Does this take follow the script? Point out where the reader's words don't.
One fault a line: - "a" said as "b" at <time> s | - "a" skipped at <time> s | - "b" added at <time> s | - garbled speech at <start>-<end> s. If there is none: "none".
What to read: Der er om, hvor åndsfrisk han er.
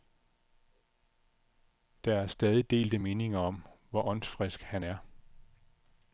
- "stadig delte meninger" added at 2.3 s